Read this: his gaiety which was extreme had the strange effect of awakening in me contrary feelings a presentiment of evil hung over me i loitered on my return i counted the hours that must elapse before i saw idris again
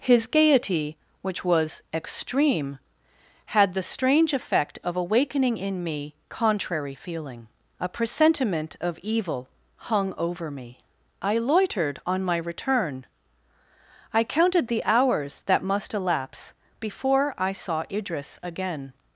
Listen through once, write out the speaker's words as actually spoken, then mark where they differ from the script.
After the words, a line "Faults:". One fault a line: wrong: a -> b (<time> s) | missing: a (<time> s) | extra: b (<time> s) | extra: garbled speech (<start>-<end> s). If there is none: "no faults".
his gaiety which was extreme had the strange effect of awakening in me contrary feeling a presentiment of evil hung over me i loitered on my return i counted the hours that must elapse before i saw idris again
Faults:
wrong: feelings -> feeling (7.0 s)